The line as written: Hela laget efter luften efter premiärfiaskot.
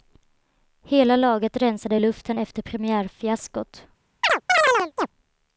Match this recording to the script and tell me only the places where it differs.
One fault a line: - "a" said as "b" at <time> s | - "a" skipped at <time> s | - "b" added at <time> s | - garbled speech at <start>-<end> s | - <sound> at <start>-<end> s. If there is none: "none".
- "efter" said as "rensade" at 1.6 s
- chirp at 4.2-5.1 s